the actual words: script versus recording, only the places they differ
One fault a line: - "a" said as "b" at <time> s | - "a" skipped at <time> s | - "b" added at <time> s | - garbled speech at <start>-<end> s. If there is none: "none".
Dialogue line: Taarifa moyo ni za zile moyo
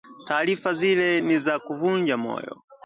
- "moyo" said as "zile" at 0.7 s
- "zile" said as "kuvunja" at 1.6 s